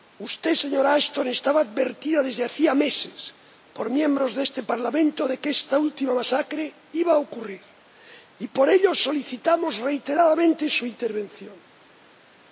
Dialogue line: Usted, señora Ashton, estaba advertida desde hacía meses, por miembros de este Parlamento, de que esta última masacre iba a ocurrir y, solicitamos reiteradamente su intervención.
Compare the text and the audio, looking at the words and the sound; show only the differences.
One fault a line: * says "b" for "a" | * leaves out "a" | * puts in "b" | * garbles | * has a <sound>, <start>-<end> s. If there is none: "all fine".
* puts in "por ello"